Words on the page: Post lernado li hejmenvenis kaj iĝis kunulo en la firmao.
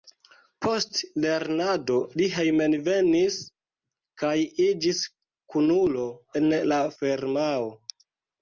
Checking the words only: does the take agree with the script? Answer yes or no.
yes